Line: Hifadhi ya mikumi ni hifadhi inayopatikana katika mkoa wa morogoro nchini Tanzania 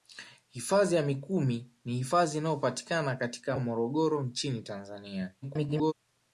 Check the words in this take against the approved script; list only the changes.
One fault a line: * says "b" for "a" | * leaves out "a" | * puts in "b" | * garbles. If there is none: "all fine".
* leaves out "mkoa"
* garbles